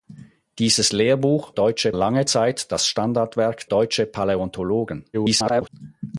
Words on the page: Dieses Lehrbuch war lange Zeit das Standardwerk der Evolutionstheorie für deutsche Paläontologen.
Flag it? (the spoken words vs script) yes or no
yes